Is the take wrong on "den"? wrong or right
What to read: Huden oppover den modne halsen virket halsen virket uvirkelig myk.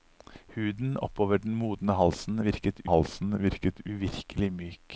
right